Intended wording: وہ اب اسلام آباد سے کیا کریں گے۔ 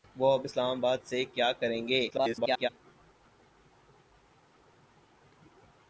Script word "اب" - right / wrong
right